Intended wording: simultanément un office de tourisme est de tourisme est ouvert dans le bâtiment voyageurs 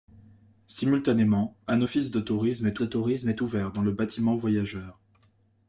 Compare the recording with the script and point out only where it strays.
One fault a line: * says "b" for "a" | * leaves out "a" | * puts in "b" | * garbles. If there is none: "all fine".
all fine